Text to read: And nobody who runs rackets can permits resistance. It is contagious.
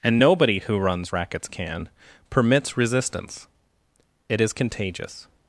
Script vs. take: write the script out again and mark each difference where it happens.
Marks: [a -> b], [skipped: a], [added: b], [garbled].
And nobody who runs rackets can permits resistance. It is contagious.